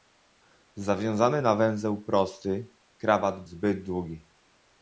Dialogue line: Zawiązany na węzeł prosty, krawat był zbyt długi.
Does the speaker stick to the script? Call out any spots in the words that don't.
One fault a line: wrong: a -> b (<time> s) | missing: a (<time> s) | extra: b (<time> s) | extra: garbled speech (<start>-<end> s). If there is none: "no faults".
missing: był (3.4 s)